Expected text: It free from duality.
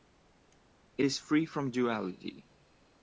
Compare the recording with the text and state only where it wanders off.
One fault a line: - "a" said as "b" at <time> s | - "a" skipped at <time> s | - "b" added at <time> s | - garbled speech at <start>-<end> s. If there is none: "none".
- "is" added at 1.0 s